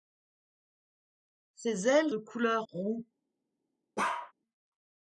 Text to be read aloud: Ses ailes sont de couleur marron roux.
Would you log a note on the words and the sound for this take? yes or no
yes